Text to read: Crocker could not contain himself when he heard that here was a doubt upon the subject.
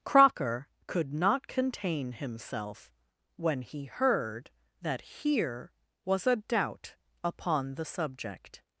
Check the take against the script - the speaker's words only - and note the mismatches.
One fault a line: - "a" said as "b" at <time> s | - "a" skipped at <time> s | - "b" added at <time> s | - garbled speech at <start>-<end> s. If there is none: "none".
none